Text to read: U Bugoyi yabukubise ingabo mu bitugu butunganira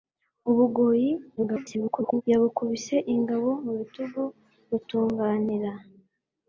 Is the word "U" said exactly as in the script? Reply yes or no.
yes